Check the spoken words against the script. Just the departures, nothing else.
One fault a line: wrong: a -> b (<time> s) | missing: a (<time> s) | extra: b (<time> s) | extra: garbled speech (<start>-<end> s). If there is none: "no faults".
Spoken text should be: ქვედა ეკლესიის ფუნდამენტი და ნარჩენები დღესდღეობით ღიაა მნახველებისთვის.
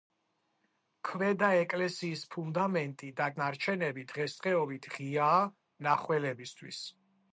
no faults